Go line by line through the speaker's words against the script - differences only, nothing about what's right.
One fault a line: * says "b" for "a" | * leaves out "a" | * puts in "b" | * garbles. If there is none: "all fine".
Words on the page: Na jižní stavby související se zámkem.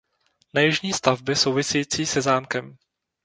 all fine